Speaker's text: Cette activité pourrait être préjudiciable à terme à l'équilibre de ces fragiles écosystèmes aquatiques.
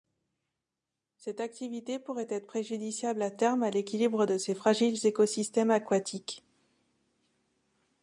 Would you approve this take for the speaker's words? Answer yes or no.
yes